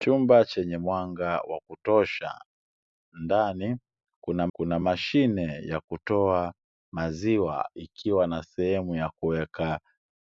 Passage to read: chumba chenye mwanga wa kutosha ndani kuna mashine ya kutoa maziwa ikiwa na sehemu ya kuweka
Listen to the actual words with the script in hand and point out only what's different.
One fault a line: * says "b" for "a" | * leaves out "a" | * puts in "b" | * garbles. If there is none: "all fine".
* puts in "kuna"